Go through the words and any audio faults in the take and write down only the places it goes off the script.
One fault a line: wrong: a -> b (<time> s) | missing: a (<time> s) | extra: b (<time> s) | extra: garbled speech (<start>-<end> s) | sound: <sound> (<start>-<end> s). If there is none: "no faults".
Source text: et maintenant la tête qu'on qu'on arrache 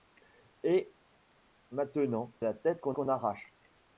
no faults